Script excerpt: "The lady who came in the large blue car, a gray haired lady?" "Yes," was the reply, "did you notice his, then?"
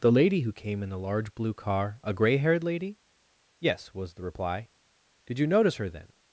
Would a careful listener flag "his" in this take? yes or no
yes